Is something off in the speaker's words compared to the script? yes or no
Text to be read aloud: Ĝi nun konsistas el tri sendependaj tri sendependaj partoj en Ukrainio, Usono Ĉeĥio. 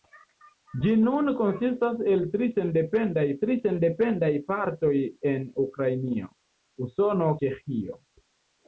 no